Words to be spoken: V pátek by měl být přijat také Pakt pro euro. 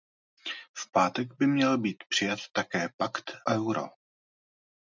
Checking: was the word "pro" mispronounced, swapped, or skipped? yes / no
yes